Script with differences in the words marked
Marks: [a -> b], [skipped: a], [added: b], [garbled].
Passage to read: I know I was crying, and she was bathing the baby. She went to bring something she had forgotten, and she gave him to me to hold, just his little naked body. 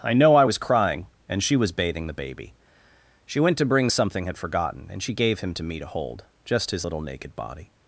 I know I was crying, and she was bathing the baby. She went to bring something [skipped: she] had forgotten, and she gave him to me to hold, just his little naked body.